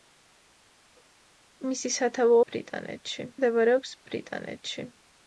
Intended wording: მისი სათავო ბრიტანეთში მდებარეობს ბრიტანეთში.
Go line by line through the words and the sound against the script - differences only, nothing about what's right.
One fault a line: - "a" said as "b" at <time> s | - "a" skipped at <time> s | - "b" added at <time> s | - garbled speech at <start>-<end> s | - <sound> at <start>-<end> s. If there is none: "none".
none